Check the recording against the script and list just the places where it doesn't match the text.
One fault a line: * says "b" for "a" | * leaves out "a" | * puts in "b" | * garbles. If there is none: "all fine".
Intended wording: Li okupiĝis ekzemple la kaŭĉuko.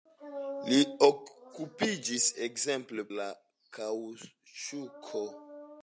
all fine